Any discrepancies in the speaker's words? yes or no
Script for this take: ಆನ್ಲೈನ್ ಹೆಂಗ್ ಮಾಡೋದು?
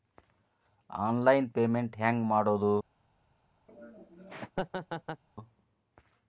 yes